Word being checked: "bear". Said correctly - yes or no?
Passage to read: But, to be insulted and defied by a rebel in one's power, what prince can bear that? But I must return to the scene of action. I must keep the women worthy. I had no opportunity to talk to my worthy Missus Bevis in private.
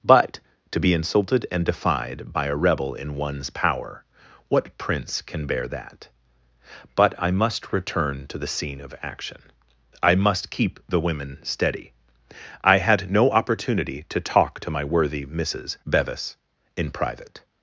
yes